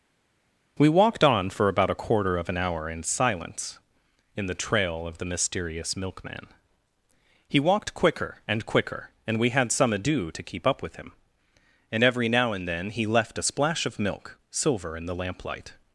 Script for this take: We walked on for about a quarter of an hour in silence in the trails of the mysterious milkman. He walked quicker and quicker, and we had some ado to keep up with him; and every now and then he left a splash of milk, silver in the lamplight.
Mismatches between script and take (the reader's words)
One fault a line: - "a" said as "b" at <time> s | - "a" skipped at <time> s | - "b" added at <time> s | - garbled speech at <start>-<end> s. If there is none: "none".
- "trails" said as "trail" at 4.5 s